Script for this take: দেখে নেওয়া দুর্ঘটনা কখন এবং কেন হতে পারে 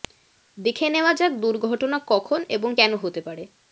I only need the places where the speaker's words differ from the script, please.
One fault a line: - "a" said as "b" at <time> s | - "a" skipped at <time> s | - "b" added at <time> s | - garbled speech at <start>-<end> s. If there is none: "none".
- "যাক" added at 1.1 s